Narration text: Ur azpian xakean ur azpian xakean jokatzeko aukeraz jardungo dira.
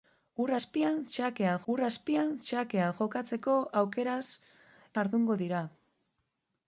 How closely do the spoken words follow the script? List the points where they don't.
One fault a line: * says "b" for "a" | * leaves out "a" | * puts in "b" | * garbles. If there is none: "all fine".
all fine